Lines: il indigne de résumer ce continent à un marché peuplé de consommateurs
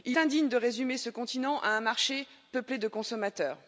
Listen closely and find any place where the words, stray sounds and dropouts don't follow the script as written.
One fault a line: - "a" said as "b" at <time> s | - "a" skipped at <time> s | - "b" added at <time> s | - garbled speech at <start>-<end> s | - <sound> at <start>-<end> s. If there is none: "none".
none